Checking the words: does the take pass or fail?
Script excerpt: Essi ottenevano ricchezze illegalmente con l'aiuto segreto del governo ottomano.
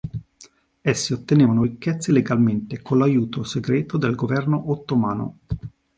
pass